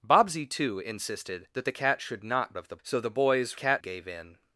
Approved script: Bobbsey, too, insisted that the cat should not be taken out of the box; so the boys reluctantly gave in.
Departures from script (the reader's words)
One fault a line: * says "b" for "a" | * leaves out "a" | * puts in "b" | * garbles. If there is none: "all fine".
* leaves out "be taken out"
* leaves out "box"
* says "cat" for "reluctantly"